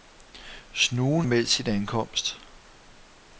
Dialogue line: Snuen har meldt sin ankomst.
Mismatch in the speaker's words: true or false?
true